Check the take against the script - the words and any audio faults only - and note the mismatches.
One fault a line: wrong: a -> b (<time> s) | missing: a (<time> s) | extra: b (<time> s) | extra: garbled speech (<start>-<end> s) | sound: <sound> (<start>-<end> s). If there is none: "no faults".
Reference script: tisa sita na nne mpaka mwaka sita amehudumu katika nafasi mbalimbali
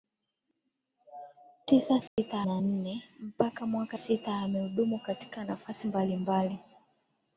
sound: dropout (2.1-2.2 s)